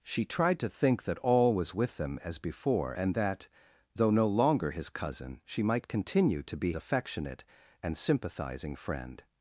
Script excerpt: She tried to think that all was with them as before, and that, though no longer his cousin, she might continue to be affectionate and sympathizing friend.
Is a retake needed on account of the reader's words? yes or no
no